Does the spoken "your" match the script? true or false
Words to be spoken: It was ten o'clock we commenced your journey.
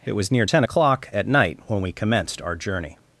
false